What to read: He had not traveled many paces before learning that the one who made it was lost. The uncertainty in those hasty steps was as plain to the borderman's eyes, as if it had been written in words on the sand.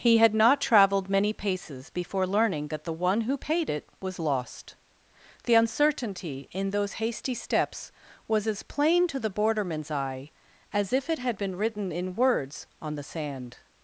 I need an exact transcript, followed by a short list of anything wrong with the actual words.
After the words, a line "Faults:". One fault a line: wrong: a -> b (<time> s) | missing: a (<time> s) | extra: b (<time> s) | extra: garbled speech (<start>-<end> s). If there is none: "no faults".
He had not traveled many paces before learning that the one who paid it was lost. The uncertainty in those hasty steps was as plain to the borderman's eye, as if it had been written in words on the sand.
Faults:
wrong: made -> paid (3.4 s)
wrong: eyes -> eye (9.9 s)